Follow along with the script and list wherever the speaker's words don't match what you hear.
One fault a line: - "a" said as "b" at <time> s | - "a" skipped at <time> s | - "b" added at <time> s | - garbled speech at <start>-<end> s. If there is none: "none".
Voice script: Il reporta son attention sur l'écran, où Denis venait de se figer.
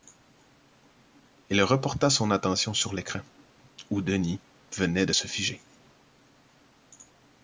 none